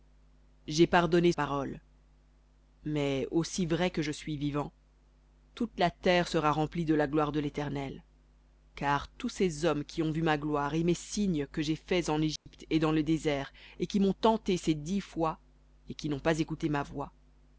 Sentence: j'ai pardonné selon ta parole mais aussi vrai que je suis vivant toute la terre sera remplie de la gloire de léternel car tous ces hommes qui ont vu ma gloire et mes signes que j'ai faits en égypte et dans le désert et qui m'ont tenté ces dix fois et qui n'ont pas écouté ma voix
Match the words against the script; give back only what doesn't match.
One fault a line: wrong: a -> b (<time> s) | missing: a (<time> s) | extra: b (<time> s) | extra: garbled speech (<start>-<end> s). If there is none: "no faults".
missing: selon ta (1.3 s)